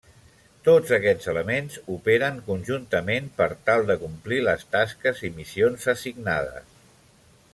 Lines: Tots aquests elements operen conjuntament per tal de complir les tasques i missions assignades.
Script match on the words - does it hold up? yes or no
yes